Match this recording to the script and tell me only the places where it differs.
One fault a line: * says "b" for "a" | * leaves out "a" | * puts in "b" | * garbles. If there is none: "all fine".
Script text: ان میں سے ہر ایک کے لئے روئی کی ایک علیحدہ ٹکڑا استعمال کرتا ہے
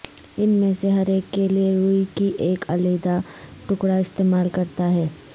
all fine